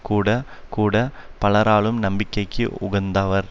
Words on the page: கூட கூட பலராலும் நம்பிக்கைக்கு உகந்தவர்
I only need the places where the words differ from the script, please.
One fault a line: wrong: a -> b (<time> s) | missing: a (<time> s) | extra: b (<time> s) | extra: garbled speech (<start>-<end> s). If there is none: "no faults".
no faults